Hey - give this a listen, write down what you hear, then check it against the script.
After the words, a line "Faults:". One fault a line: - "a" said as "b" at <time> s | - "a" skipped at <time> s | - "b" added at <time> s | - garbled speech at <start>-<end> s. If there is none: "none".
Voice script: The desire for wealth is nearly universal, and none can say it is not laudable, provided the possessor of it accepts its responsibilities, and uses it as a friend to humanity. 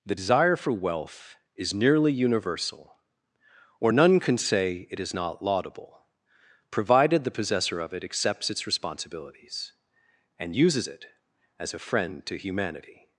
The desire for wealth is nearly universal, or none can say it is not laudable, provided the possessor of it accepts its responsibilities, and uses it as a friend to humanity.
Faults:
- "and" said as "or" at 3.8 s